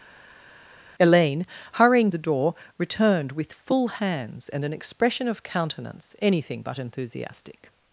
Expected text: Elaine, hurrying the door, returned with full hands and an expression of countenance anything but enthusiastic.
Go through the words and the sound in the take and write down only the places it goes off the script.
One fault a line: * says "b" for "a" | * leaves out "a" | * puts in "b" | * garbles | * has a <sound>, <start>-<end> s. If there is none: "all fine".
all fine